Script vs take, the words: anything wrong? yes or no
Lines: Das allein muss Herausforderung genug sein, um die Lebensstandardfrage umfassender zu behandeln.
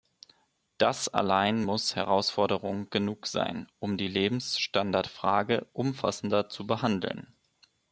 no